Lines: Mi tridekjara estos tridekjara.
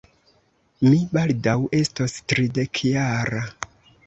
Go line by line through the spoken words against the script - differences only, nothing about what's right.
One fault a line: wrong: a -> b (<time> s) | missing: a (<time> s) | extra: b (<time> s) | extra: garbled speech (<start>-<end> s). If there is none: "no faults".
wrong: tridekjara -> baldaŭ (1.2 s)